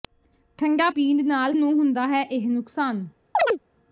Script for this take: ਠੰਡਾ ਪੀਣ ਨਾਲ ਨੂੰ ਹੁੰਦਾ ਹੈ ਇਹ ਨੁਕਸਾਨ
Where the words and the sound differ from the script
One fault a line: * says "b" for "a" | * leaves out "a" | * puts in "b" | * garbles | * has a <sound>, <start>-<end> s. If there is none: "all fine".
* has a chirp, 3.3-3.6 s